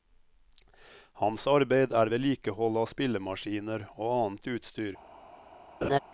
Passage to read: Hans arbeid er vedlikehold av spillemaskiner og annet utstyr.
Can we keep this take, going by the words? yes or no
yes